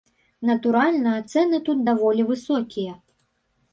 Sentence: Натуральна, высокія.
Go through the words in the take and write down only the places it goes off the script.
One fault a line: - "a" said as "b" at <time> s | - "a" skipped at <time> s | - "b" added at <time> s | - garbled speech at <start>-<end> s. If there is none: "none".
- "цэны тут даволі" added at 1.3 s